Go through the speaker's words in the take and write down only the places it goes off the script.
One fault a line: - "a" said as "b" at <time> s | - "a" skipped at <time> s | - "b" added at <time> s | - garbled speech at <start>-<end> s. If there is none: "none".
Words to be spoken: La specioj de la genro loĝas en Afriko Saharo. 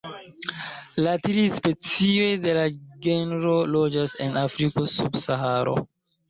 - "tri" added at 1.2 s
- "sub" added at 4.9 s